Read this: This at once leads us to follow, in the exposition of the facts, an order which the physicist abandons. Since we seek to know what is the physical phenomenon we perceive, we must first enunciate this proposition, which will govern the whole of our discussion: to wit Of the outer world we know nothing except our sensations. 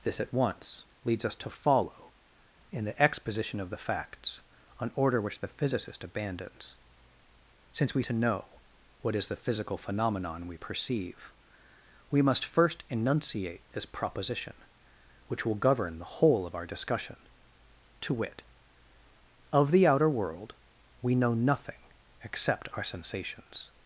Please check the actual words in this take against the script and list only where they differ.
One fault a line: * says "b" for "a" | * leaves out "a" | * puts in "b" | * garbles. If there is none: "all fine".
* leaves out "seek"